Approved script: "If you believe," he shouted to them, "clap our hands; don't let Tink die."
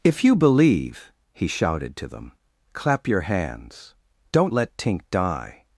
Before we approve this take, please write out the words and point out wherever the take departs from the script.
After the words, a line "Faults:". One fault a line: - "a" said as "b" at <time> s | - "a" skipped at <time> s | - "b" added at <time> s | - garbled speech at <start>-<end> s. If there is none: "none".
"If you believe," he shouted to them, "clap your hands; don't let Tink die."
Faults:
- "our" said as "your" at 3.1 s